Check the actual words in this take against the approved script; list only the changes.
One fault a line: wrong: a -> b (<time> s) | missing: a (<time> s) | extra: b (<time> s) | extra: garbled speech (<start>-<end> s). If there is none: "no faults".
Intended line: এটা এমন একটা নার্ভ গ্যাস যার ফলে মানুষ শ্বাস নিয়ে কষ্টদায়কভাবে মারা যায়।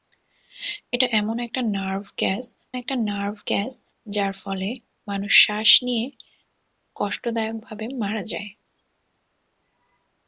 extra: একটা নার্ভ গ্যাস (2.7 s)